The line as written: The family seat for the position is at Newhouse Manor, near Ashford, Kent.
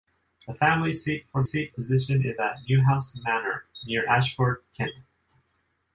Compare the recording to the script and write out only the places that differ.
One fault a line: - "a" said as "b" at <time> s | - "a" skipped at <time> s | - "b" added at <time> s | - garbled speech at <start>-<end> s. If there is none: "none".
- "the" said as "seat" at 1.4 s